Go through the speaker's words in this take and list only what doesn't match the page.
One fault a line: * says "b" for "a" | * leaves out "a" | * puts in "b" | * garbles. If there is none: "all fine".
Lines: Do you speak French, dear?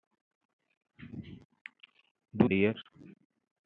* leaves out "you speak French"